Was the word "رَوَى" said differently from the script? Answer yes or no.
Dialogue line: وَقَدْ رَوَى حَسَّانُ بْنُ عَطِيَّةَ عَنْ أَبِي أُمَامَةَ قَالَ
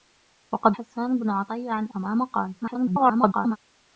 yes